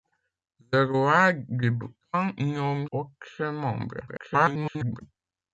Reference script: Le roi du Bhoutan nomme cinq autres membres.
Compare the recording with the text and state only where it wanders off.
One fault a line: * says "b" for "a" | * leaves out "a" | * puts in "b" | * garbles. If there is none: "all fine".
* leaves out "cinq"
* garbles